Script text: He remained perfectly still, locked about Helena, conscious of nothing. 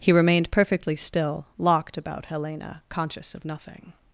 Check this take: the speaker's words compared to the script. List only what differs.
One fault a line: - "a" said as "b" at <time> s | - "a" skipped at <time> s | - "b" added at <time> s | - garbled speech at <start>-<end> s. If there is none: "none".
none